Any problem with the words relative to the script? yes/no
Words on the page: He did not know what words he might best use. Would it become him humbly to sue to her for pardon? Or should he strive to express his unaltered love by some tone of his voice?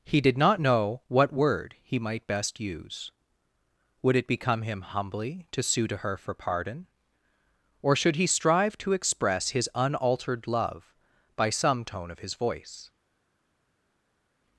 yes